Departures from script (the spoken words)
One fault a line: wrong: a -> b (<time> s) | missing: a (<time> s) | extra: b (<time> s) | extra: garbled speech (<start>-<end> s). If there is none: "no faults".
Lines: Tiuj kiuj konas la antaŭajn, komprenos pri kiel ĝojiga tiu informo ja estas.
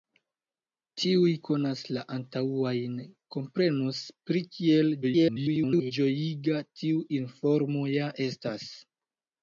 missing: kiuj (1.3 s)
extra: garbled speech (5.0-5.9 s)